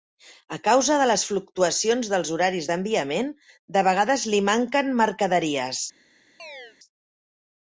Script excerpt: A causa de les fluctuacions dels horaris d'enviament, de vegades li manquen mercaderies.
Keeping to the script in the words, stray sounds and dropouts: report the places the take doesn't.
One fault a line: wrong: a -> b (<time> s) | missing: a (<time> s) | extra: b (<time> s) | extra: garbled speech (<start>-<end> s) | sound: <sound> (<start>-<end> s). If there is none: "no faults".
sound: chirp (6.4-6.8 s)